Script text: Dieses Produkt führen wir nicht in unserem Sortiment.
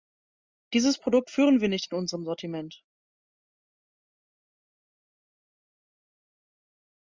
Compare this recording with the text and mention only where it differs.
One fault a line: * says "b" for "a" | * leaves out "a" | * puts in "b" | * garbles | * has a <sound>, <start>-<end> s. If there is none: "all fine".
all fine